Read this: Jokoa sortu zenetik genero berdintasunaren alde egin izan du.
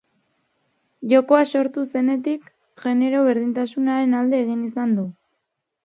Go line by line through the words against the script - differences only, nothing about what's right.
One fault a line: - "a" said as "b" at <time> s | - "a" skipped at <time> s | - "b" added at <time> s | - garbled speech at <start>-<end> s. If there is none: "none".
none